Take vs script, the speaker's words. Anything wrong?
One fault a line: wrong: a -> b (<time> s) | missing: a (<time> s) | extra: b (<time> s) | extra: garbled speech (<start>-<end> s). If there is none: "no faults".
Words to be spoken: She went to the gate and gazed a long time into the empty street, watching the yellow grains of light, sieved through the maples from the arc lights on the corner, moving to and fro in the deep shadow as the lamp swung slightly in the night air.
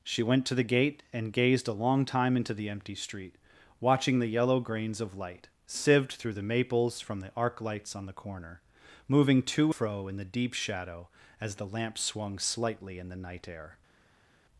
missing: and (9.7 s)